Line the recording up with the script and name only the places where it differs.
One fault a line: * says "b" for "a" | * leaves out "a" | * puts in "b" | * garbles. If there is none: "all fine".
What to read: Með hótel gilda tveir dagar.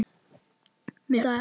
* leaves out "hótel gilda tveir"